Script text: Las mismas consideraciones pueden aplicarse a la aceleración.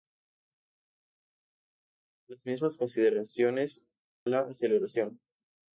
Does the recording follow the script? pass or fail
fail